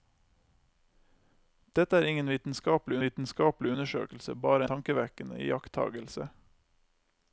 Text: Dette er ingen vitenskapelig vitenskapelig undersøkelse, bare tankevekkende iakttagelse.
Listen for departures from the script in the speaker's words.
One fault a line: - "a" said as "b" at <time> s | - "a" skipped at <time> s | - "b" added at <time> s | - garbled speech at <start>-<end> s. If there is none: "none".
none